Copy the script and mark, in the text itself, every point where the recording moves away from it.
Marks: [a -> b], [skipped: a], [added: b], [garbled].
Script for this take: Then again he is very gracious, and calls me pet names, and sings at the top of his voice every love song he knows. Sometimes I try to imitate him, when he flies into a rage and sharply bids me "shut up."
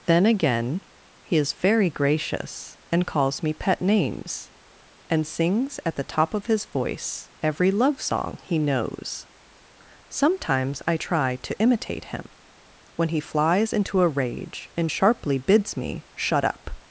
Then again he is very gracious, and calls me pet names, and sings at the top of his voice every love song he knows. Sometimes I try to imitate him, when he flies into a rage and sharply bids me "shut up."